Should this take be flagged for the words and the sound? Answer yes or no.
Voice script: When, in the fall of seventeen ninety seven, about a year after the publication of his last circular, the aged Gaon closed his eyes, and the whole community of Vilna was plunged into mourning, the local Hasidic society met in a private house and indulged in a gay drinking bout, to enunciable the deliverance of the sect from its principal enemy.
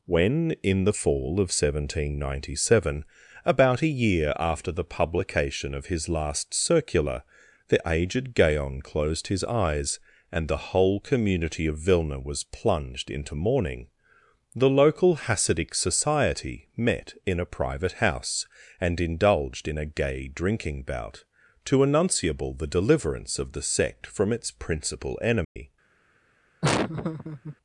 yes